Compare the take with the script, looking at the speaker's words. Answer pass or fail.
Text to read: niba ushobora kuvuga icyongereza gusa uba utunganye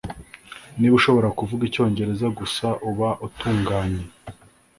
pass